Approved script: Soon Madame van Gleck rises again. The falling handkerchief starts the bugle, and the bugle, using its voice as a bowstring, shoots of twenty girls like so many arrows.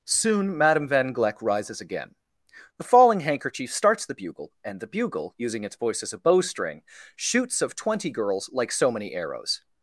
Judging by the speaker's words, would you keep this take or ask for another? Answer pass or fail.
pass